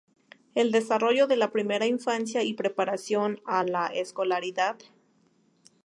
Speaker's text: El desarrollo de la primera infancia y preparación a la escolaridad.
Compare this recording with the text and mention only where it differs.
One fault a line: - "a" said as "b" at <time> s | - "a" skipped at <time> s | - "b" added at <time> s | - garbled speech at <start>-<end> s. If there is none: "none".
none